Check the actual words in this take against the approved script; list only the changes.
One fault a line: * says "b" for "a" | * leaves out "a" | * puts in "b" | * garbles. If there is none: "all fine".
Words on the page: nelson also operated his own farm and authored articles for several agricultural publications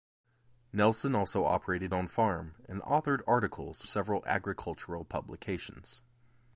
* leaves out "his"
* leaves out "for"